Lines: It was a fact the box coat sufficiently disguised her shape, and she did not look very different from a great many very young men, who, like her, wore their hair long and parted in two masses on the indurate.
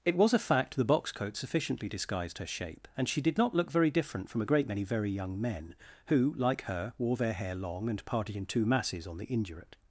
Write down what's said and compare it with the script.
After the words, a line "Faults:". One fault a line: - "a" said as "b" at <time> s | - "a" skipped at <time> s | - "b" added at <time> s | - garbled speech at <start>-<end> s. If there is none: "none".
It was a fact the box coat sufficiently disguised her shape, and she did not look very different from a great many very young men, who, like her, wore their hair long and parted in two masses on the indurate.
Faults:
none